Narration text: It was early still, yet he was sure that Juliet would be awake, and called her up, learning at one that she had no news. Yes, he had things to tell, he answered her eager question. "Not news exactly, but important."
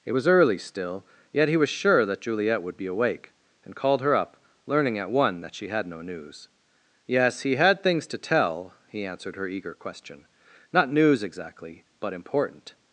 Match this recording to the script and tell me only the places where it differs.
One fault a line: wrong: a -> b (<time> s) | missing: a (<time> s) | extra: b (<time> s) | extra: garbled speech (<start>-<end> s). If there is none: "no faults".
no faults